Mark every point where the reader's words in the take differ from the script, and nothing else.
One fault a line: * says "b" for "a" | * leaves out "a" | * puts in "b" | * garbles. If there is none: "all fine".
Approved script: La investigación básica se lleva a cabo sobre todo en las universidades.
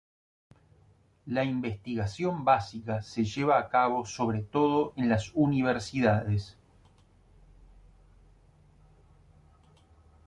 all fine